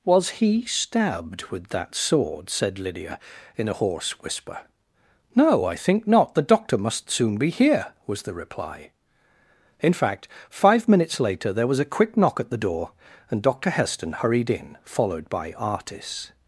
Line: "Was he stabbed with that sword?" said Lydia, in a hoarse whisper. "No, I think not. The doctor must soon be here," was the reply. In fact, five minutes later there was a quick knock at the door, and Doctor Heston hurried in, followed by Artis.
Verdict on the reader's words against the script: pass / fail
pass